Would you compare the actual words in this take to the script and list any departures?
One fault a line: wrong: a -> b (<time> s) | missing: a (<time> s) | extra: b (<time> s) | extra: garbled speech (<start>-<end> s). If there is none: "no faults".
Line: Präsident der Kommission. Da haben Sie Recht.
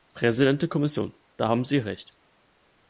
no faults